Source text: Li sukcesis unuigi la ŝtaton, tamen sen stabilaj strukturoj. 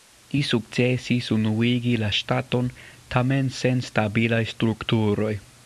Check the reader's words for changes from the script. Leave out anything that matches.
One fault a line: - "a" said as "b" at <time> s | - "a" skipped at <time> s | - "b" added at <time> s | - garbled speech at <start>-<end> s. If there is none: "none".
none